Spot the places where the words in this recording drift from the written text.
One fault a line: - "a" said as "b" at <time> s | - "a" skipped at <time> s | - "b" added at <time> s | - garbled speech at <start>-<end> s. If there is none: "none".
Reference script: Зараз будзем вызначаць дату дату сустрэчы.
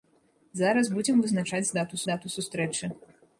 none